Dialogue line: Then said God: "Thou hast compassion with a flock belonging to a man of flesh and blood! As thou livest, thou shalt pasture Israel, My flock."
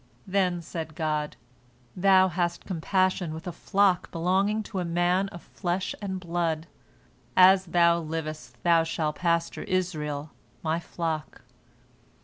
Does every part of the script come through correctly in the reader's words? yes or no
yes